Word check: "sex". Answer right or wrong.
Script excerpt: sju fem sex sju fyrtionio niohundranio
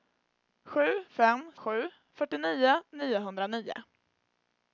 wrong